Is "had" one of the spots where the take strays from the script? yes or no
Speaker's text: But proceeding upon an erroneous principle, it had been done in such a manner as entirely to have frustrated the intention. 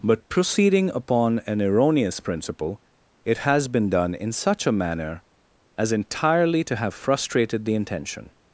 yes